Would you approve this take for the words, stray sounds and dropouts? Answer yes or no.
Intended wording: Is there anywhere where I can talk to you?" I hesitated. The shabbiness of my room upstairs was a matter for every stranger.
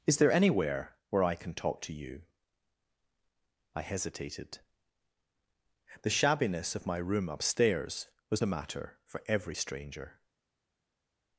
yes